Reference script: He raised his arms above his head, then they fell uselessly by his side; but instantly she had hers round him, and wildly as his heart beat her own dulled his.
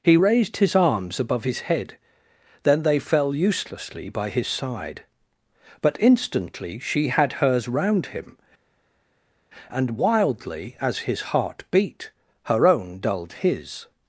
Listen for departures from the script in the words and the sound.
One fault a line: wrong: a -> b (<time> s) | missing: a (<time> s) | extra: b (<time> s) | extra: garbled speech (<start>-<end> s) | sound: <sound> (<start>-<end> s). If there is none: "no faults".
no faults